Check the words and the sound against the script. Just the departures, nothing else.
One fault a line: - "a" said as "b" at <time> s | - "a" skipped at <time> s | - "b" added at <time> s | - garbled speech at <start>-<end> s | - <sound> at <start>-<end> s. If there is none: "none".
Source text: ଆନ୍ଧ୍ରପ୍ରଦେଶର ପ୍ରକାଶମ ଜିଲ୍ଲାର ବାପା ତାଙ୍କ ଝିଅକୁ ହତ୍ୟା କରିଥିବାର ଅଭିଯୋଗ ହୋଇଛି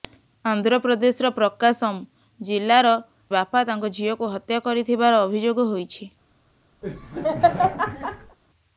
- laugh at 6.8-8.4 s